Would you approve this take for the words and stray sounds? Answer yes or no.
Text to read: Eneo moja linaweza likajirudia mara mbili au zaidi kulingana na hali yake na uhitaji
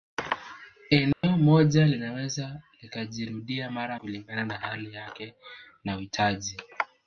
no